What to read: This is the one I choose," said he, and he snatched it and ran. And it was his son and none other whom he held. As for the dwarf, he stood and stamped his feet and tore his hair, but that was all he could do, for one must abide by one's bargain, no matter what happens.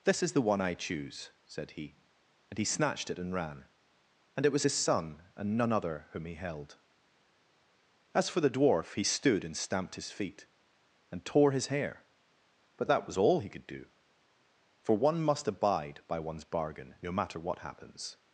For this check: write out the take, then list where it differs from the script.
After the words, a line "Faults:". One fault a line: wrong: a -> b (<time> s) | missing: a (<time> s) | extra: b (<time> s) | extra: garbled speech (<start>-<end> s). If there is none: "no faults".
This is the one I choose," said he, and he snatched it and ran. And it was his son and none other whom he held. As for the dwarf, he stood and stamped his feet and tore his hair, but that was all he could do, for one must abide by one's bargain, no matter what happens.
Faults:
no faults